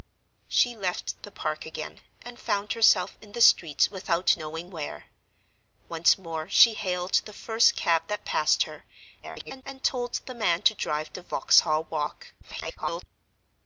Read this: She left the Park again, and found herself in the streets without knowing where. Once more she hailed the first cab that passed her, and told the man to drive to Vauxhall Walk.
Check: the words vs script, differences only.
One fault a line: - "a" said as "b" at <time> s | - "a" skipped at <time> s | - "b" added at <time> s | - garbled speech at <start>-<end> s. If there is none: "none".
- garbled speech at 9.2-9.6 s
- garbled speech at 12.4-13.0 s